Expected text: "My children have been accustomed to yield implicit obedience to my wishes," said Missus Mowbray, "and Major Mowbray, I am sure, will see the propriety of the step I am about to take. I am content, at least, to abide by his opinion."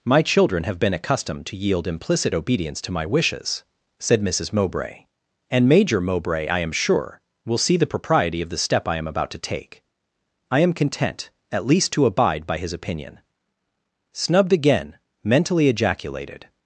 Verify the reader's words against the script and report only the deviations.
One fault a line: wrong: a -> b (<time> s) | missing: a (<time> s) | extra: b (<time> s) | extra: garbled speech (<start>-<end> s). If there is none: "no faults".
extra: Snubbed again mentally ejaculated (14.1 s)